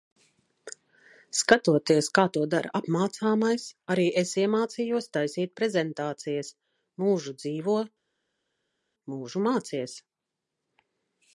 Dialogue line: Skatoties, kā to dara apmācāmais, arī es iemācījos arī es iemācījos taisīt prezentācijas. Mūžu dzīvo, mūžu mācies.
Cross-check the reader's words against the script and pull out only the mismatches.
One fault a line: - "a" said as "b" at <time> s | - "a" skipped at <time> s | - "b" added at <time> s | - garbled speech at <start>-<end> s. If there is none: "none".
- "arī es iemācījos" skipped at 5.1 s